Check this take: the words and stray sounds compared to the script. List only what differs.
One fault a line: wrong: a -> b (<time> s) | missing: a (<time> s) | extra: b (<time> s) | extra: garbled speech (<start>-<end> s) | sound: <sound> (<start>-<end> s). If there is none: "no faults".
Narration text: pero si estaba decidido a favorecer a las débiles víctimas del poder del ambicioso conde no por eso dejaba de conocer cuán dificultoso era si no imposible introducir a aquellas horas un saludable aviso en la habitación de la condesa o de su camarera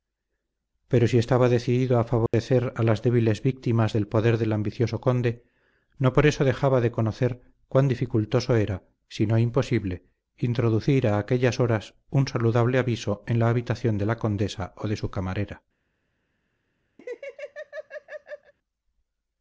sound: dropout (2.3-2.3 s)
sound: laugh (17.0-18.5 s)